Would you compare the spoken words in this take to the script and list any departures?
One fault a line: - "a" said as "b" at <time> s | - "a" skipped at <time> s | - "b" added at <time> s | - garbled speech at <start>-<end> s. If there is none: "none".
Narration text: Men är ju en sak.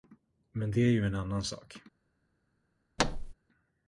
- "det" added at 0.7 s
- "annan" added at 1.1 s